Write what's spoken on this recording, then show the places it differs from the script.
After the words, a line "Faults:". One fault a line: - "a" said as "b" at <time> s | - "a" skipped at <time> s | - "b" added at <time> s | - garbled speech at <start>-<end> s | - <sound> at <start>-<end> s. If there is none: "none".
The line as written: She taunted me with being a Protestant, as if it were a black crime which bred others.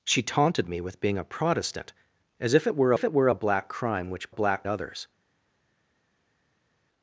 She taunted me with being a Protestant, as if it were if it were a black crime which black others.
Faults:
- "if it were" added at 2.9 s
- "bred" said as "black" at 4.3 s